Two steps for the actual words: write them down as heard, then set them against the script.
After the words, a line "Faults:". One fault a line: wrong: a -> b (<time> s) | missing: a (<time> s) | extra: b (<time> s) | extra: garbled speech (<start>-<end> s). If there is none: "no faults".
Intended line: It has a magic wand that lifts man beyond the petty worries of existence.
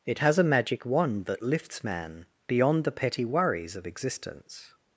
It has a magic wand that lifts man beyond the petty worries of existence.
Faults:
no faults